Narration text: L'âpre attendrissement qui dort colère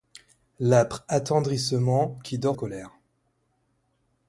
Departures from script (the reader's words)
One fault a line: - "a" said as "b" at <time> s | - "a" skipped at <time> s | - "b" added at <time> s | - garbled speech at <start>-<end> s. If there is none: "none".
none